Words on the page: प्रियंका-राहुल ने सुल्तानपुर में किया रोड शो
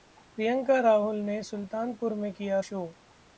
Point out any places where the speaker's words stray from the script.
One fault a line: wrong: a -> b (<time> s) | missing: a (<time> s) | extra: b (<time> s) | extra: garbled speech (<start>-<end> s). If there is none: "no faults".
missing: रोड (2.6 s)